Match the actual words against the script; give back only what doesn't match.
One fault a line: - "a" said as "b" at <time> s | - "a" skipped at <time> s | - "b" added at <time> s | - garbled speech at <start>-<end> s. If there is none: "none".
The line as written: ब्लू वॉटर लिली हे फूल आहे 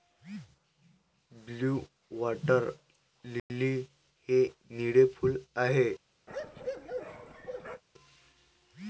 - "निळे" added at 4.7 s